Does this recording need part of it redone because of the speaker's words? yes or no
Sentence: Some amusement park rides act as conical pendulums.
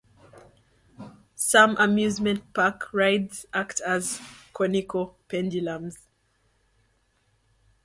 no